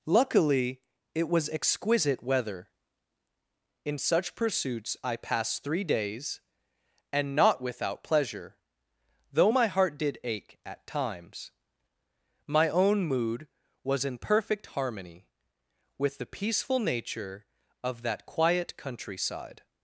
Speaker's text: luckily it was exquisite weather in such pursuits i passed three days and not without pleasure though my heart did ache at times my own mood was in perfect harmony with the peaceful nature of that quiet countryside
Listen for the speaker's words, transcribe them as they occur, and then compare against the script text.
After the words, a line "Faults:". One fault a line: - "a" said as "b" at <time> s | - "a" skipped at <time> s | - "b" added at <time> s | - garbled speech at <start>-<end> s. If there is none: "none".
luckily it was exquisite weather in such pursuits i passed three days and not without pleasure though my heart did ache at times my own mood was in perfect harmony with the peaceful nature of that quiet countryside
Faults:
none